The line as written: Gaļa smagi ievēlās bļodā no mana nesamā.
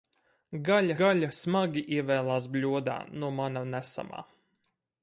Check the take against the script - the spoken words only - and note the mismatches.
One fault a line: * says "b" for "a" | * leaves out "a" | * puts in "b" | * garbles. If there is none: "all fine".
* puts in "gaļa"